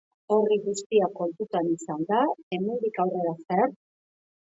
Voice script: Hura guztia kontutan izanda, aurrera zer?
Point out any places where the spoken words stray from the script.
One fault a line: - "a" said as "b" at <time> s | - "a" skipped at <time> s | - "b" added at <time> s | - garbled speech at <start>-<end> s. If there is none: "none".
- "Hura" said as "Hori" at 0.3 s
- "hemendik" added at 2.6 s